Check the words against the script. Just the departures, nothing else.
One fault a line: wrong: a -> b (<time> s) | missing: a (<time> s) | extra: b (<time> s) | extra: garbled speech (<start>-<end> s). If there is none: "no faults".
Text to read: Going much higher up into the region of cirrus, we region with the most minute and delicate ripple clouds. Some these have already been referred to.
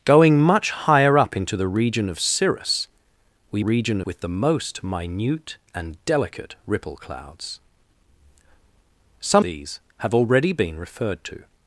no faults